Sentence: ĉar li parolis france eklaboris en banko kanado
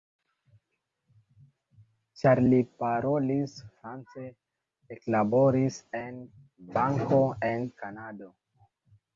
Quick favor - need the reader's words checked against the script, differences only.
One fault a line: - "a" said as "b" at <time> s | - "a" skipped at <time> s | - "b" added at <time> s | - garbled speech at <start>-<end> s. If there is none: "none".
- "en" added at 7.5 s